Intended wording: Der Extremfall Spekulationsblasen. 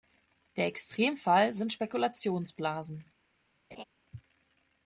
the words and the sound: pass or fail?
fail